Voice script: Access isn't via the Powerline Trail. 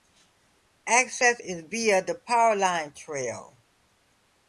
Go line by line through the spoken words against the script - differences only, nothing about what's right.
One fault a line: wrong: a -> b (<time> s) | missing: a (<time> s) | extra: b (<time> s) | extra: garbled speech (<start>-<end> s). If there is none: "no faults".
wrong: isn't -> is (1.4 s)